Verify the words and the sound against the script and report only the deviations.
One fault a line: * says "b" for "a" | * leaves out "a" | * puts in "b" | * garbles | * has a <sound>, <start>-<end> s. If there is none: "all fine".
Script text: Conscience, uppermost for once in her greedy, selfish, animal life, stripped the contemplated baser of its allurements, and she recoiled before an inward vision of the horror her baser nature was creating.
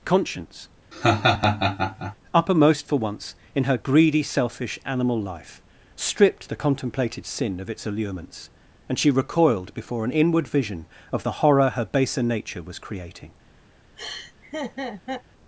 * has a laugh, 0.9-2.2 s
* says "sin" for "baser"
* has a laugh, 14.0-15.2 s